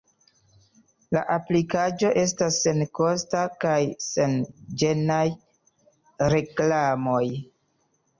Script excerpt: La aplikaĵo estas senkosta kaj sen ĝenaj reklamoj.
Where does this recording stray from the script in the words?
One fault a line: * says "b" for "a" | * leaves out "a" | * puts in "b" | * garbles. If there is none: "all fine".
all fine